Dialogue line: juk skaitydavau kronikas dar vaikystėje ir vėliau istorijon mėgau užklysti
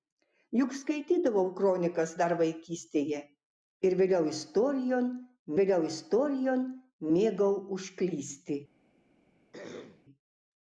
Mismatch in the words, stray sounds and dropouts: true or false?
true